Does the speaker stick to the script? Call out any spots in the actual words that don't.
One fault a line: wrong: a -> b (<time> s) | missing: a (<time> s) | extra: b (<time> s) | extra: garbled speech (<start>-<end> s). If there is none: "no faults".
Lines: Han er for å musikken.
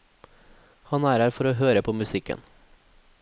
extra: her (1.2 s)
extra: høre på (1.6 s)